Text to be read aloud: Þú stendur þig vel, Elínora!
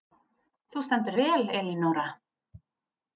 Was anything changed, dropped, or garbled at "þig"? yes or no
yes